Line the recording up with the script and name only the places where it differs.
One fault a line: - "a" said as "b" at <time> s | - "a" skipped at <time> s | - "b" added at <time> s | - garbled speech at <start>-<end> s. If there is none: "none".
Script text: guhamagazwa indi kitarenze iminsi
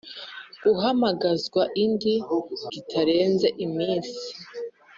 none